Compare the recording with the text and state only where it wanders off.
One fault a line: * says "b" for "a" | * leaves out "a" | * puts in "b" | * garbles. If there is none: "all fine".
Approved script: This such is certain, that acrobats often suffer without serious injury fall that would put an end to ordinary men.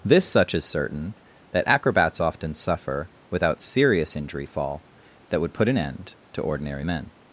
all fine